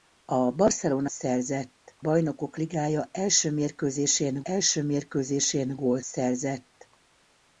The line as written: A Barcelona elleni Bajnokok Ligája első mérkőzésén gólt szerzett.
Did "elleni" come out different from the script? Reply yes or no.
yes